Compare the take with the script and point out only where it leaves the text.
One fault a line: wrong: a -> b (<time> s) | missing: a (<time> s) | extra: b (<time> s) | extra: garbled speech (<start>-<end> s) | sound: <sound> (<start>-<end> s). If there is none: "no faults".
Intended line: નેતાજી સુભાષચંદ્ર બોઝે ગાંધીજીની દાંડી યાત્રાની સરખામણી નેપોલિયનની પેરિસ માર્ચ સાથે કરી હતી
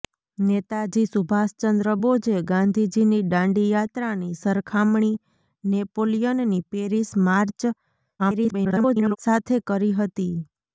extra: garbled speech (8.2-9.2 s)